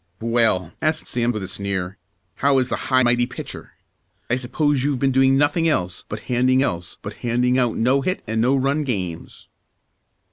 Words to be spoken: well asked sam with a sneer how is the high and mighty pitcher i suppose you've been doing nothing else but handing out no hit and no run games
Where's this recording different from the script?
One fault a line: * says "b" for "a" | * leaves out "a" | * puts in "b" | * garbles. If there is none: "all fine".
* leaves out "and"
* puts in "else but handing"